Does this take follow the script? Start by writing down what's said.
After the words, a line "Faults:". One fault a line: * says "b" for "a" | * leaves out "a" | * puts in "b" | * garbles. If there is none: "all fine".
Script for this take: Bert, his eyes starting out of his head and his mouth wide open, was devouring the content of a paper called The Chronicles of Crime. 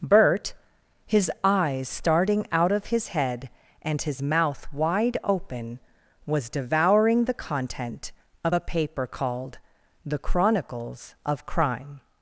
Bert, his eyes starting out of his head and his mouth wide open, was devouring the content of a paper called The Chronicles of Crime.
Faults:
all fine